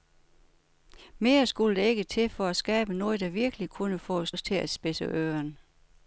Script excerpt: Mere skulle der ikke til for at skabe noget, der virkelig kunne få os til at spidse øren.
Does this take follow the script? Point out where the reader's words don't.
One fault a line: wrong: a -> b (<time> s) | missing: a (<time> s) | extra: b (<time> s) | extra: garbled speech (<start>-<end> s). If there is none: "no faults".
extra: os (4.3 s)